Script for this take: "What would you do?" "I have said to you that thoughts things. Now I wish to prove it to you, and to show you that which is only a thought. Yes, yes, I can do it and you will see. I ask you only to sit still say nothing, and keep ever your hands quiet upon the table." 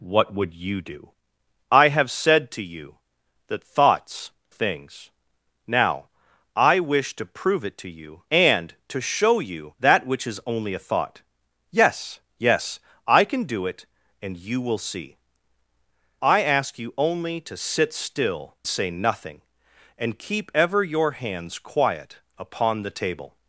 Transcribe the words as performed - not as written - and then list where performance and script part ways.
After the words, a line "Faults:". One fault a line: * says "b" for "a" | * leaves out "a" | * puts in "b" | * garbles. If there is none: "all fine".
"What would you do?" "I have said to you that thoughts things. Now I wish to prove it to you, and to show you that which is only a thought. Yes, yes, I can do it and you will see. I ask you only to sit still say nothing, and keep ever your hands quiet upon the table."
Faults:
all fine